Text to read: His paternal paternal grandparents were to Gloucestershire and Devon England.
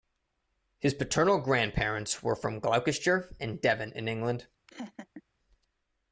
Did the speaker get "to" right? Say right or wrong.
wrong